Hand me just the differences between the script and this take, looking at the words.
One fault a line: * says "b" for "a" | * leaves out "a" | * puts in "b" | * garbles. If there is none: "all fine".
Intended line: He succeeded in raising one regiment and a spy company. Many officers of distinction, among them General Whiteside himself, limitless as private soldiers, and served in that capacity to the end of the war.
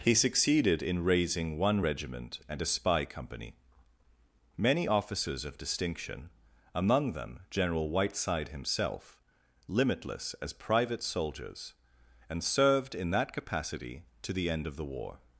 all fine